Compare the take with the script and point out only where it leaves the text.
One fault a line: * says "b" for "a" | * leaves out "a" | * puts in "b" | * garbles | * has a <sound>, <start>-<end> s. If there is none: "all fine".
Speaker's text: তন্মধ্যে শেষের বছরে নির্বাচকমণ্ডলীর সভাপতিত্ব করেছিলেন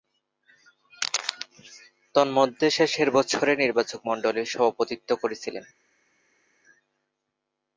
all fine